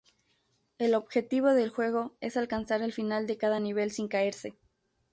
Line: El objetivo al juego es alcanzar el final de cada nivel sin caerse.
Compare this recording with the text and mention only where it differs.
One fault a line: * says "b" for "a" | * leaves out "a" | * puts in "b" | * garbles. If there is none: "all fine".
* says "del" for "al"